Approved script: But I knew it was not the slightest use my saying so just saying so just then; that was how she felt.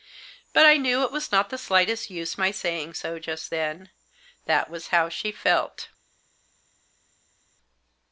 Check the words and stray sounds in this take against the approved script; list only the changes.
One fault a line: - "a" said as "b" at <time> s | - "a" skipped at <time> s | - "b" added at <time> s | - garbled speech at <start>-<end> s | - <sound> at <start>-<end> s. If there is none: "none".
- "saying so just" skipped at 3.5 s